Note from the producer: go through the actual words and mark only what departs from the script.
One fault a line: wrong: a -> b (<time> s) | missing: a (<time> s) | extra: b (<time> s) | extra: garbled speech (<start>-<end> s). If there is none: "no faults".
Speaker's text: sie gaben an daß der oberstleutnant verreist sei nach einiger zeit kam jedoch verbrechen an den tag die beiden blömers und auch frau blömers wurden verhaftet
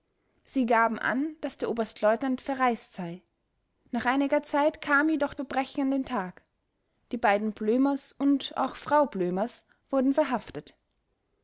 no faults